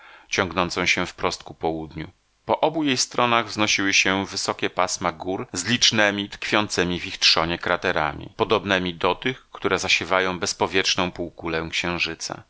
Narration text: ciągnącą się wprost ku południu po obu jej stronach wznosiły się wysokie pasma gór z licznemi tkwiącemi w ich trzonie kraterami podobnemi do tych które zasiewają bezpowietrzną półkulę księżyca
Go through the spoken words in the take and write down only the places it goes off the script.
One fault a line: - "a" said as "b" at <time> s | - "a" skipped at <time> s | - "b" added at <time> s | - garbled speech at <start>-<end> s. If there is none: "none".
none